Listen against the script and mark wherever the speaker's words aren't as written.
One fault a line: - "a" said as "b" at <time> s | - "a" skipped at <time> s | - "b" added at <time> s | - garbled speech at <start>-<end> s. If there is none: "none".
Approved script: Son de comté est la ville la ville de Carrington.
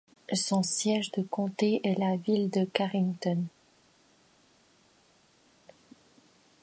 - "siège" added at 0.6 s
- "la ville" skipped at 2.5 s